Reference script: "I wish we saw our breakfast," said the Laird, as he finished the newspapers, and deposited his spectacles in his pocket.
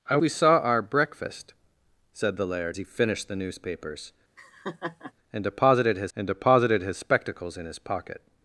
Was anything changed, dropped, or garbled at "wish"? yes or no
yes